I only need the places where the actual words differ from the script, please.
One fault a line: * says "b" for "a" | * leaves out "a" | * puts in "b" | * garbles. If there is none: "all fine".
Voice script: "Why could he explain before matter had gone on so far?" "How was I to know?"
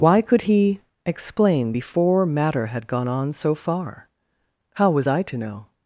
all fine